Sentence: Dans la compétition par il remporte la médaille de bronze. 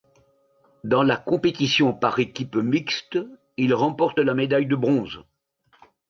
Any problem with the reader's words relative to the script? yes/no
yes